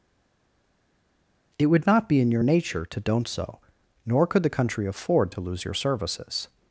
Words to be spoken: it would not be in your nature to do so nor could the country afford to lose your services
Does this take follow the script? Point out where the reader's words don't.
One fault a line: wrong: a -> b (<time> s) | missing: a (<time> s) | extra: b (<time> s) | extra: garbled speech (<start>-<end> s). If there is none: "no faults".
wrong: do -> don't (3.0 s)